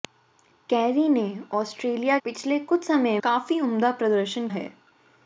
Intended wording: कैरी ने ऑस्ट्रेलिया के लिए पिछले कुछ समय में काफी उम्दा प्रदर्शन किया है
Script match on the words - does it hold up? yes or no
no